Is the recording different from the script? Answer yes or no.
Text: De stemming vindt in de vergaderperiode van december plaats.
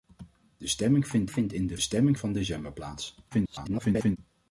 yes